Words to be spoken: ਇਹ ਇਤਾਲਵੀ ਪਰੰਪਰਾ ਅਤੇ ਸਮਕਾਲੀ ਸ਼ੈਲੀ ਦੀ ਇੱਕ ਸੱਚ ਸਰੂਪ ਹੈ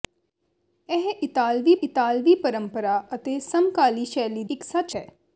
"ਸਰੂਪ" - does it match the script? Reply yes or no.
no